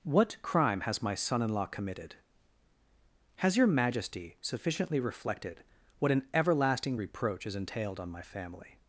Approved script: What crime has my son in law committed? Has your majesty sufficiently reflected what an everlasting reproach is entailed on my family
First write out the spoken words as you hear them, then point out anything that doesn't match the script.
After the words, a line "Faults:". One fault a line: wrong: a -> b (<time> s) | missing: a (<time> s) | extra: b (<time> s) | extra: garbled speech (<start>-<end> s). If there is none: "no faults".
What crime has my son in law committed? Has your majesty sufficiently reflected what an everlasting reproach is entailed on my family
Faults:
no faults